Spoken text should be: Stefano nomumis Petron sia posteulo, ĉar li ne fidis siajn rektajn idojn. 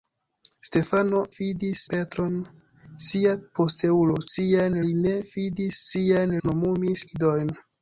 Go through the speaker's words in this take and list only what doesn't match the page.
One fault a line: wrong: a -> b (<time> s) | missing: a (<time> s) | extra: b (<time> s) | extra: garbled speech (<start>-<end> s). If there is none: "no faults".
wrong: nomumis -> fidis (1.4 s)
wrong: ĉar -> siajn (4.3 s)
wrong: rektajn -> nomumis (6.5 s)